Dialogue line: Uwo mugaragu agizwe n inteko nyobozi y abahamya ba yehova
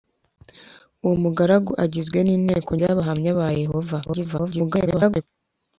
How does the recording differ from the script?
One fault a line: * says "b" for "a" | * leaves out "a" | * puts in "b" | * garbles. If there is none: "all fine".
* leaves out "nyobozi"
* garbles